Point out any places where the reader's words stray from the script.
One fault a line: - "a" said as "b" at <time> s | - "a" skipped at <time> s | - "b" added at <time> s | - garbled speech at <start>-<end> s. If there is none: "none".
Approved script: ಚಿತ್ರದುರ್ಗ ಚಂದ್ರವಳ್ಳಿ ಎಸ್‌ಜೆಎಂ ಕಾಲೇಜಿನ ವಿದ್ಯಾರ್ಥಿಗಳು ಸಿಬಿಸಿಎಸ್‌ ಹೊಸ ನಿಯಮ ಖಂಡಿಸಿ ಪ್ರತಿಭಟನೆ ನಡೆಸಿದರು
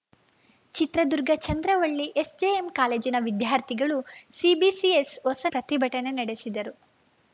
- "ನಿಯಮ ಖಂಡಿಸಿ" skipped at 5.5 s